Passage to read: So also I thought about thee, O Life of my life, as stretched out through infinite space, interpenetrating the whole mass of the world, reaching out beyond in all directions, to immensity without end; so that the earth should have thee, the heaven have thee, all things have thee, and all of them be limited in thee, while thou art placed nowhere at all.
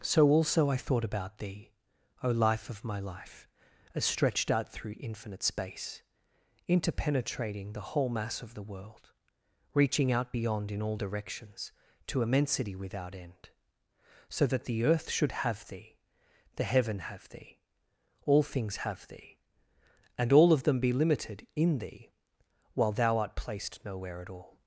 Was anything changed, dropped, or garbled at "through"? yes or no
no